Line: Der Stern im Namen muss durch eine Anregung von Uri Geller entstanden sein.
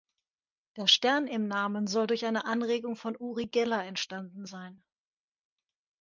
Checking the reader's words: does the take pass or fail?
fail